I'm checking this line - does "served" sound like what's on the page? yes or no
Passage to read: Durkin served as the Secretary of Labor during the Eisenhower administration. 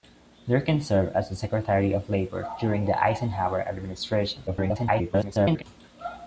yes